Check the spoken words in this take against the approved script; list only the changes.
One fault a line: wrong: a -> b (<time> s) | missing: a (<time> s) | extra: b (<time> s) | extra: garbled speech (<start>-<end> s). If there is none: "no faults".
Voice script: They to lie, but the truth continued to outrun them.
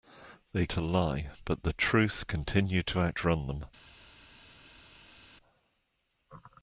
no faults